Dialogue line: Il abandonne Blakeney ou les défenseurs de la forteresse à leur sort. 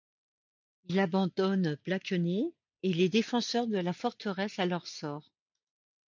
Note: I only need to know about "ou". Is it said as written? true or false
false